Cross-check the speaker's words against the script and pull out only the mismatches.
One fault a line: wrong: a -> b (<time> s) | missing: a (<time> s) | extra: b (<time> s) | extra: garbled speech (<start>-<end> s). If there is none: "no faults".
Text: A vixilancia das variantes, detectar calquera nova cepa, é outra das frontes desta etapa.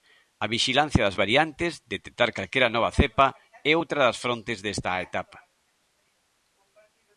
no faults